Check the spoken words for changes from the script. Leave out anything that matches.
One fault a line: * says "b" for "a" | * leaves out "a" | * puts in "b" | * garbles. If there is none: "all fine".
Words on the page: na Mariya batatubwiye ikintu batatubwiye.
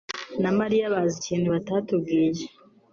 * says "bazi" for "batatubwiye"